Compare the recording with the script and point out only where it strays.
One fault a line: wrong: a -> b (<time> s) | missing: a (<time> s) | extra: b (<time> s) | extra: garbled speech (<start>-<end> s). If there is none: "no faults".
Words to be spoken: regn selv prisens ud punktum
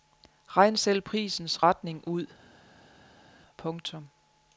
extra: retning (1.6 s)